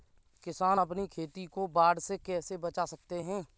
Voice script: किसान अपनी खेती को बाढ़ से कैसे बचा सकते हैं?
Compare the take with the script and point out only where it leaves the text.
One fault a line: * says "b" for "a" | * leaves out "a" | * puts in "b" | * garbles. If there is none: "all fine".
all fine